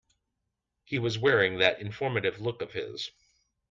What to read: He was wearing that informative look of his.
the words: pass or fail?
pass